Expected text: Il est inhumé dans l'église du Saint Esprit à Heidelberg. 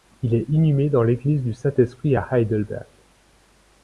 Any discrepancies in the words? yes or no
no